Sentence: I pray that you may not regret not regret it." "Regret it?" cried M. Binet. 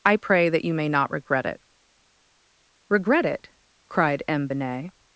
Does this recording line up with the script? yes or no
no